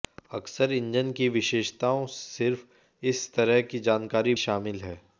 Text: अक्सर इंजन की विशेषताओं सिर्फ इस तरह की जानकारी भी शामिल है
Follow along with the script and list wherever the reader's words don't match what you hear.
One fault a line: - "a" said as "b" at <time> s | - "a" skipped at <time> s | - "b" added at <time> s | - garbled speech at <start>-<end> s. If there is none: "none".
- "भी" skipped at 4.3 s